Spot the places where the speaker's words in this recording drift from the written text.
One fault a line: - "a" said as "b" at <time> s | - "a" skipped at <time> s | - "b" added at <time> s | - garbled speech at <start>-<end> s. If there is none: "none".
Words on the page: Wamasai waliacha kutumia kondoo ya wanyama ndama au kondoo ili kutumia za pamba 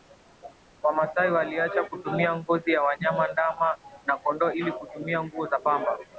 - "kondoo" said as "ngozi" at 2.4 s
- "au" said as "na" at 4.0 s
- "nguo" added at 5.2 s